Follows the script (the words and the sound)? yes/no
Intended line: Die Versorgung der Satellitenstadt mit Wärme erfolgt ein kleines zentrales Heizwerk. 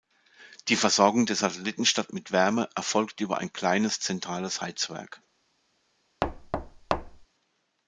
no